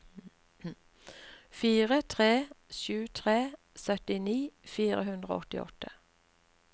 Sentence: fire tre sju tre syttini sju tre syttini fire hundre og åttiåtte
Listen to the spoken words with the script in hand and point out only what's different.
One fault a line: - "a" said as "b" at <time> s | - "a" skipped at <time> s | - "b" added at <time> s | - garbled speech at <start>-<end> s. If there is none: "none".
- "sju tre syttini" skipped at 4.4 s